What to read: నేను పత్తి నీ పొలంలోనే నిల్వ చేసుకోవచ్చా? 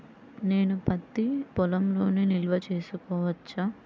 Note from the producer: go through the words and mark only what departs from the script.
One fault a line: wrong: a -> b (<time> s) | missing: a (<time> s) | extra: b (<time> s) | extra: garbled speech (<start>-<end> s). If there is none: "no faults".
missing: నీ (1.2 s)